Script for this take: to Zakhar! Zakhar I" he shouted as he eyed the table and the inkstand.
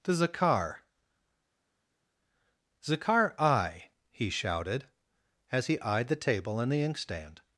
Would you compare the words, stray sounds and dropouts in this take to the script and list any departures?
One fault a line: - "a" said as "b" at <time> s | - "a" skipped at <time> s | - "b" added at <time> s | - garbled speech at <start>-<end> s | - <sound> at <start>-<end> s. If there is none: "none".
none